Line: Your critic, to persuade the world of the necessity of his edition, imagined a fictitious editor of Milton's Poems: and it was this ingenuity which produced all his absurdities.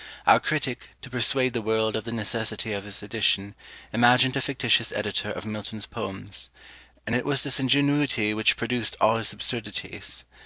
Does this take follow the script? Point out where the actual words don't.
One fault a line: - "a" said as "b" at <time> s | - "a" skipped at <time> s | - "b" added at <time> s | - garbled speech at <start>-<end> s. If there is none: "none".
- "Your" said as "Our" at 0.2 s